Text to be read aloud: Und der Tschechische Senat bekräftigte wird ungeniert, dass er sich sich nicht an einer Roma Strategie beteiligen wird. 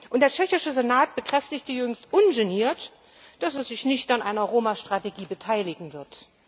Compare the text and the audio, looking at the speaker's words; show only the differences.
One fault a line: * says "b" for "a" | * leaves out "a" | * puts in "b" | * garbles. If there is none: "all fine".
* says "jüngst" for "wird"
* leaves out "sich"